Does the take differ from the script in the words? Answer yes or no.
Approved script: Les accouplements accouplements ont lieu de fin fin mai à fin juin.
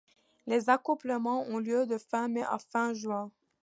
yes